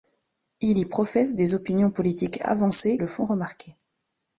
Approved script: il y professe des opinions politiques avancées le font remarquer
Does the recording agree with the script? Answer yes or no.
yes